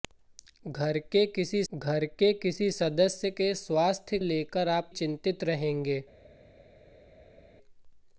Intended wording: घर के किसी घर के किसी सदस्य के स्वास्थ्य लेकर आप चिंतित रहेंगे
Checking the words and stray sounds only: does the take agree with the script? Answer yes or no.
yes